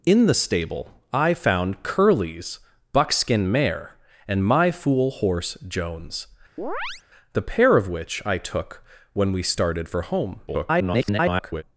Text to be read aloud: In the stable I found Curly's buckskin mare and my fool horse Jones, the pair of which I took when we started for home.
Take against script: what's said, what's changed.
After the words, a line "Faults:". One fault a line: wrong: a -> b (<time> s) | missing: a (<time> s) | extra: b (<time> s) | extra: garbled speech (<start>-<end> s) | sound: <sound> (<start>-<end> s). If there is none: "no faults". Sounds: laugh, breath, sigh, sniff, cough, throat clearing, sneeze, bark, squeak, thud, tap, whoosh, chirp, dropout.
In the stable I found Curly's buckskin mare and my fool horse Jones, the pair of which I took when we started for home. [garbled]
Faults:
sound: chirp (6.6-7.0 s)
extra: garbled speech (10.5-11.6 s)